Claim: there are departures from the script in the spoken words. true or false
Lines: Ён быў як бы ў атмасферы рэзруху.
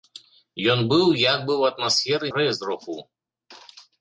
false